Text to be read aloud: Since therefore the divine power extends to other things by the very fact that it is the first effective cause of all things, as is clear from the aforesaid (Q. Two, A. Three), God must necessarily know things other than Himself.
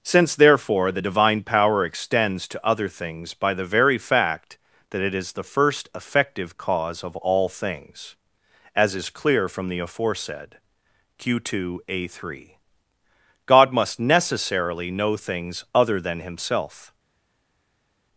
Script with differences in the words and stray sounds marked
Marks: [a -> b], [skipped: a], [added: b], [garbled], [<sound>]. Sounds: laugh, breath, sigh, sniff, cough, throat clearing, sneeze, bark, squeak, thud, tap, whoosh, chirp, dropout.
Since therefore the divine power extends to other things by the very fact that it is the first effective cause of all things, as is clear from the aforesaid (Q. Two, A. Three), God must necessarily know things other than Himself.